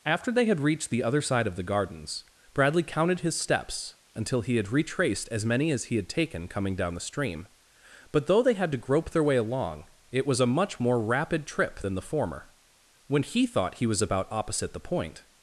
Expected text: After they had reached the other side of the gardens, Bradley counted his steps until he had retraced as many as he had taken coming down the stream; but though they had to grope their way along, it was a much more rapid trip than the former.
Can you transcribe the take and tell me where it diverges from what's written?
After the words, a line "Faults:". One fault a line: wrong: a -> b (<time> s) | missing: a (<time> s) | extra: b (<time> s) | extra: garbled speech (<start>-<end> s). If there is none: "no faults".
After they had reached the other side of the gardens, Bradley counted his steps until he had retraced as many as he had taken coming down the stream; but though they had to grope their way along, it was a much more rapid trip than the former. When he thought he was about opposite the point
Faults:
extra: When he thought he was about opposite the point (13.1 s)